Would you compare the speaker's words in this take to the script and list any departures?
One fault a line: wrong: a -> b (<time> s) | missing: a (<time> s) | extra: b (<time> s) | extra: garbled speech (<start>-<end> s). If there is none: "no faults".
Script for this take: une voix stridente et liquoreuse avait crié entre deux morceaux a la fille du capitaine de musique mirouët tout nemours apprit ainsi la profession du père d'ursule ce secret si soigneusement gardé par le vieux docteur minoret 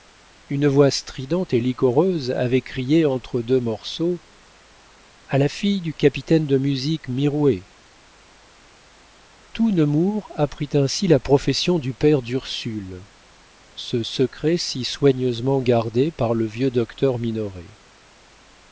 no faults